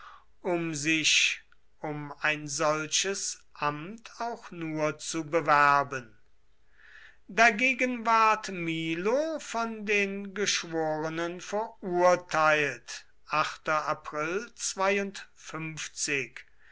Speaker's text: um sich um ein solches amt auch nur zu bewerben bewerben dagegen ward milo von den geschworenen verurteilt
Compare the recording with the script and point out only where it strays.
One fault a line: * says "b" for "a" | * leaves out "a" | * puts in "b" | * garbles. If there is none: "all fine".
* leaves out "bewerben"